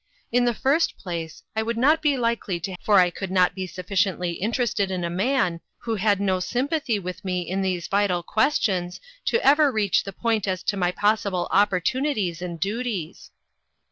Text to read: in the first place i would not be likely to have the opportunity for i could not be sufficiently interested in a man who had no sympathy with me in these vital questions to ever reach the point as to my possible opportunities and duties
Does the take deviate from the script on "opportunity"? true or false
true